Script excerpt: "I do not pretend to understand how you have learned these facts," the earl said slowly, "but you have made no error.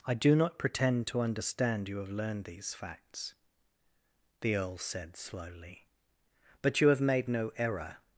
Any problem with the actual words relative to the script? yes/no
yes